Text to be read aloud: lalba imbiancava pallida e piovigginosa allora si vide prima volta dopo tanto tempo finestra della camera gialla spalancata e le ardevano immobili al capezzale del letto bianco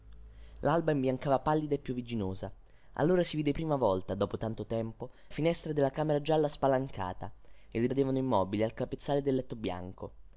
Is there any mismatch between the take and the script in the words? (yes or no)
no